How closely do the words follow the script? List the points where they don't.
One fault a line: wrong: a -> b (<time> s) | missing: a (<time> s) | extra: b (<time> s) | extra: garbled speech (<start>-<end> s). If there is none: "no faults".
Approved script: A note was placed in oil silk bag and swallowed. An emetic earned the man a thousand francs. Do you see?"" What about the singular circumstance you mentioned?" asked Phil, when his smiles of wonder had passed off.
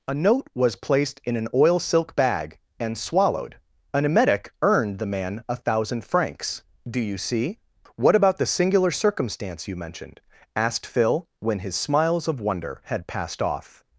extra: an (1.4 s)